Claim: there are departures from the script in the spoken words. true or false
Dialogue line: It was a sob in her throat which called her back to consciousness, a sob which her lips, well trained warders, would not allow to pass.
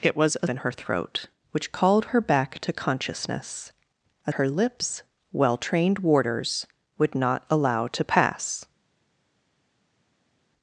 true